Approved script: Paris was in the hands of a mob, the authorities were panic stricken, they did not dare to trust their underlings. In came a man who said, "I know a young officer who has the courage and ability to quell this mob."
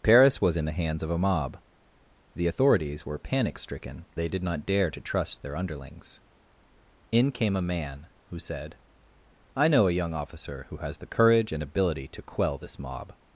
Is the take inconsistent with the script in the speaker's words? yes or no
no